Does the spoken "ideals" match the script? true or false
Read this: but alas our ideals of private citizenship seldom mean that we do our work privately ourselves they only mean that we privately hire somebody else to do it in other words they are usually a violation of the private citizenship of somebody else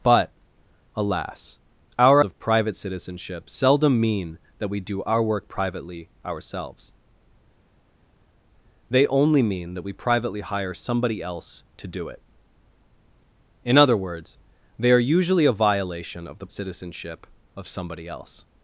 false